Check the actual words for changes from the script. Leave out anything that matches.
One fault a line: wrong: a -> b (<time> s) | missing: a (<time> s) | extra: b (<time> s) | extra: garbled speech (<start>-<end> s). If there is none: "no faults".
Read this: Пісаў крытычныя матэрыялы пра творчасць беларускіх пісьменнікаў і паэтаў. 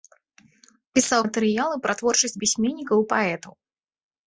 missing: крытычныя (1.2 s)
missing: беларускіх (2.4 s)